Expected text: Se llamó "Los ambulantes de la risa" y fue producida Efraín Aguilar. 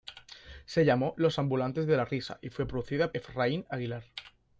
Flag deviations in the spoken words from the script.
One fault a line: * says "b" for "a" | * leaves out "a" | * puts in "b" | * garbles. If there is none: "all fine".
all fine